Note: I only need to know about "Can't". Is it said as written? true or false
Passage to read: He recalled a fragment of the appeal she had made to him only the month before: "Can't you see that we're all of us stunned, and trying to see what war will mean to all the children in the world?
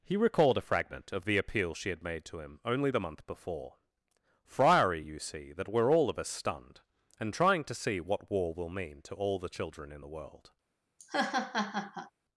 false